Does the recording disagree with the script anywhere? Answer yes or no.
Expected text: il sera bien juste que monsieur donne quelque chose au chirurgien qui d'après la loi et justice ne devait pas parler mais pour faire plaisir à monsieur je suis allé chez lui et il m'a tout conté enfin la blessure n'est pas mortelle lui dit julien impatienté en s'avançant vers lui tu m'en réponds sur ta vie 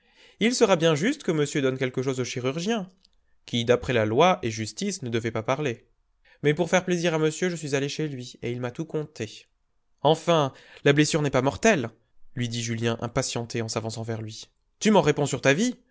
no